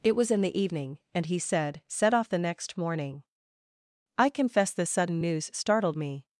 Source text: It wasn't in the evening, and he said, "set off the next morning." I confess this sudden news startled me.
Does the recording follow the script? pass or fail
fail